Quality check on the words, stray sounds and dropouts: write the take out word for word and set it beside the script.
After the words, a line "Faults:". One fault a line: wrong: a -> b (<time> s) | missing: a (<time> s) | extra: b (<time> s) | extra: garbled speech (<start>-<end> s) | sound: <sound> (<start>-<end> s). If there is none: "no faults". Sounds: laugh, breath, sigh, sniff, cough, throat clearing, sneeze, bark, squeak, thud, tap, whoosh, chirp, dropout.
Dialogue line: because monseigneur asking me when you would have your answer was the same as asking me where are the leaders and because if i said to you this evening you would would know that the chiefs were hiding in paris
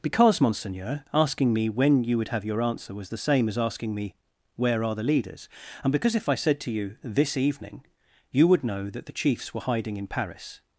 because monseigneur asking me when you would have your answer was the same as asking me where are the leaders and because if i said to you this evening you would know that the chiefs were hiding in paris
Faults:
missing: would (8.6 s)